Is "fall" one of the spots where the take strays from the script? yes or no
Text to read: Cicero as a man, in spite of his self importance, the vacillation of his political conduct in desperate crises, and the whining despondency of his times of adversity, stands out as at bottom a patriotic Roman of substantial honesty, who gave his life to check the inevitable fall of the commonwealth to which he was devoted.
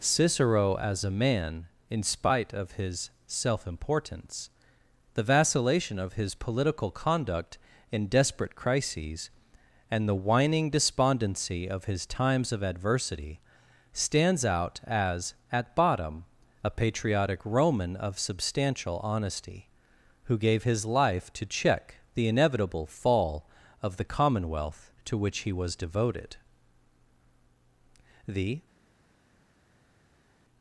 no